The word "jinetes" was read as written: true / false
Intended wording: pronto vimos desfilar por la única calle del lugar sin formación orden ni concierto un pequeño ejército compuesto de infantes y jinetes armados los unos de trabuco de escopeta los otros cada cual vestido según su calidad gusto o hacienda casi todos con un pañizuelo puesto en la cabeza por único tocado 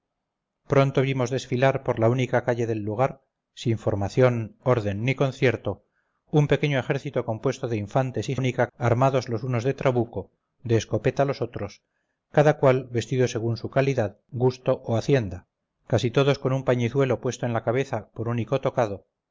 false